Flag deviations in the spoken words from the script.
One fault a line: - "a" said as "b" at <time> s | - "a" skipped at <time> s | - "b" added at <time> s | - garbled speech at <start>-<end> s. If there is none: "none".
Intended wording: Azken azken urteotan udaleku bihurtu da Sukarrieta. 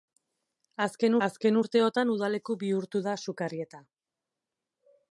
none